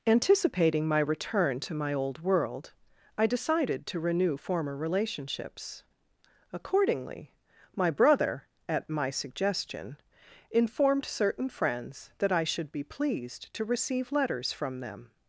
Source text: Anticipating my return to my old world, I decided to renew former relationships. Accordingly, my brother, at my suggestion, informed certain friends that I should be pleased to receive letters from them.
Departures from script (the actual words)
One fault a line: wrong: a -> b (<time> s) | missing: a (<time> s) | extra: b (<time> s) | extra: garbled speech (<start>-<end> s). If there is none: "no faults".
no faults